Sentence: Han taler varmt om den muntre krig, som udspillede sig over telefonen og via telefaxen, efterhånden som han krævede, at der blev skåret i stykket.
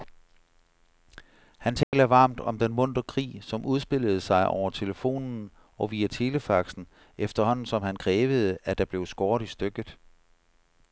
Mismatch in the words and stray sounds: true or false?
true